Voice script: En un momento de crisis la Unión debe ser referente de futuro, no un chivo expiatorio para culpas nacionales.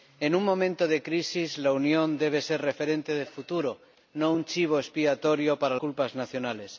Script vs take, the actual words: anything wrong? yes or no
no